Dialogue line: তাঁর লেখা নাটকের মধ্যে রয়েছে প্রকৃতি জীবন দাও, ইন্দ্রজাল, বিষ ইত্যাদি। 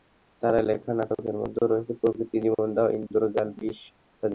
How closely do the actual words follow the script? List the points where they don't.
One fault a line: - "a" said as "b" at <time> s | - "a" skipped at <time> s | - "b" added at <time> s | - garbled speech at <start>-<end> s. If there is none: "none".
none